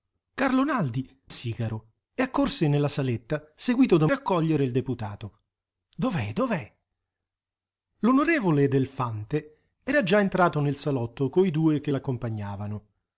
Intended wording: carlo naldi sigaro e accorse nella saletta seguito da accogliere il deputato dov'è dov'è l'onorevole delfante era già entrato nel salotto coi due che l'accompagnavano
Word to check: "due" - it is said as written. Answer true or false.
true